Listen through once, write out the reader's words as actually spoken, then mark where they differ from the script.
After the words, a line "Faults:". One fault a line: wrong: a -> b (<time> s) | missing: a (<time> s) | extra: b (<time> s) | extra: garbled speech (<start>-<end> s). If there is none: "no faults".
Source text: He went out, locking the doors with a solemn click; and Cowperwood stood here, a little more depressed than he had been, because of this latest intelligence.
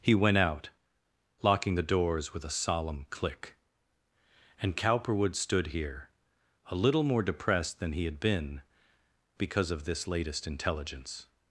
He went out, locking the doors with a solemn click; and Cowperwood stood here, a little more depressed than he had been, because of this latest intelligence.
Faults:
no faults